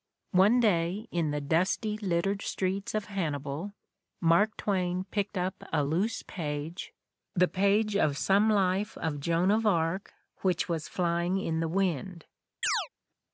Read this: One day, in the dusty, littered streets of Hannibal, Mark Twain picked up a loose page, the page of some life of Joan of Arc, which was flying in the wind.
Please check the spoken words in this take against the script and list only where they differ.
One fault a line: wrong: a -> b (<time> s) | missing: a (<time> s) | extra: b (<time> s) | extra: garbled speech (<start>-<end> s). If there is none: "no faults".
no faults